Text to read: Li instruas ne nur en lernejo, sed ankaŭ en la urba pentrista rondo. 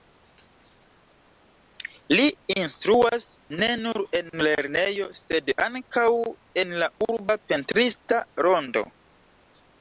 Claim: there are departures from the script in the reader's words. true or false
false